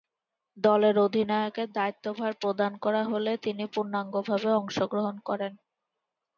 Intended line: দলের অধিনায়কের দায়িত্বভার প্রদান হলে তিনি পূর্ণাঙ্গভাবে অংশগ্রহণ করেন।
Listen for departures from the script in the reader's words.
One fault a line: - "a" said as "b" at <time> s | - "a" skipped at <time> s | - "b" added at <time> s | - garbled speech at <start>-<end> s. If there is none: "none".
- "করা" added at 2.8 s